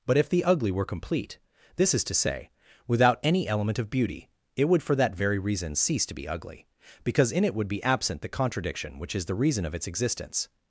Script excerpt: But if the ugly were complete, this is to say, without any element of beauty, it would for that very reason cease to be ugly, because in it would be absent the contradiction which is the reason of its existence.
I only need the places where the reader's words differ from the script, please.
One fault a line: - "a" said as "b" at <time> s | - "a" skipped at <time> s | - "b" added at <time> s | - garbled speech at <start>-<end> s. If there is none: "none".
none